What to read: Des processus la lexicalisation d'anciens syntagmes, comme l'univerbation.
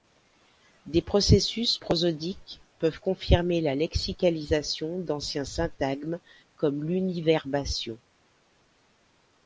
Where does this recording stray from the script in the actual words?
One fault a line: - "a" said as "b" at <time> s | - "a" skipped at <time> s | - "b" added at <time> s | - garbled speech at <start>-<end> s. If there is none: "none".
- "prosodiques peuvent confirmer" added at 1.7 s